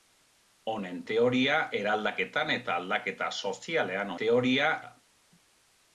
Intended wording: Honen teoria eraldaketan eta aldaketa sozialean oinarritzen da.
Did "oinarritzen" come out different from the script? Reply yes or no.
yes